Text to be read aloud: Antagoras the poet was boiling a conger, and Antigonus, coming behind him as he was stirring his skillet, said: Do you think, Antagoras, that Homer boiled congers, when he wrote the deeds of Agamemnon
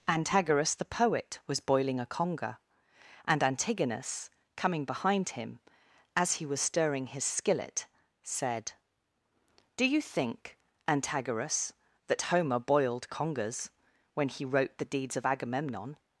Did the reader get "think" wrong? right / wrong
right